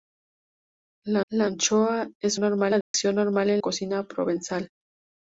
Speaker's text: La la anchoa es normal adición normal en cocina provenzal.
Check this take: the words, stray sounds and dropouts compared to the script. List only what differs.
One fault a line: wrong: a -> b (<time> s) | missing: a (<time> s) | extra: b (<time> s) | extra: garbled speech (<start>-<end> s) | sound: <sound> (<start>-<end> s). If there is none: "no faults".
sound: dropout (2.8-2.9 s)